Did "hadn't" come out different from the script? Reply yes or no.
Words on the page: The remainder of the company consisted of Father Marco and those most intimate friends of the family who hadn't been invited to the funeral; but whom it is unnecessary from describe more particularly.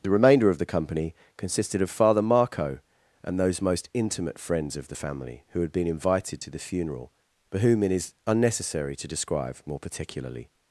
yes